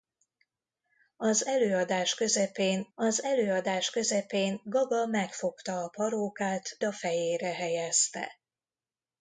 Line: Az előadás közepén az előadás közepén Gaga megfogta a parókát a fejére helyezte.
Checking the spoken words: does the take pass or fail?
pass